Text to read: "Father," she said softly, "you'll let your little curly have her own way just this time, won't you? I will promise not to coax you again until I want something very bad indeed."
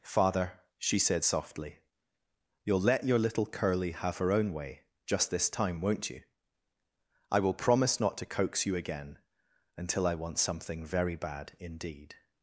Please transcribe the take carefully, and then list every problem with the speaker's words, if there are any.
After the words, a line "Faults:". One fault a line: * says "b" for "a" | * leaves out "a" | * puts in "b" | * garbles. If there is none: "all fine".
"Father," she said softly, "you'll let your little curly have her own way just this time, won't you? I will promise not to coax you again until I want something very bad indeed."
Faults:
all fine